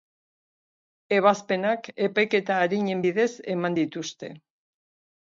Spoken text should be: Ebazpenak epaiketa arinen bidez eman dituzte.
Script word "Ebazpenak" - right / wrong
right